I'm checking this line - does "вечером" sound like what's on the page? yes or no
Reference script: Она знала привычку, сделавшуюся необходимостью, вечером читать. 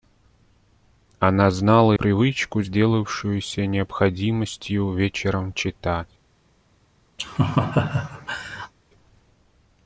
yes